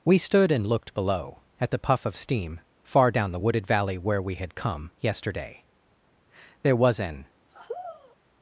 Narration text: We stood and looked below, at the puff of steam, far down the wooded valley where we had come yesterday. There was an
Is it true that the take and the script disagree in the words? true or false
false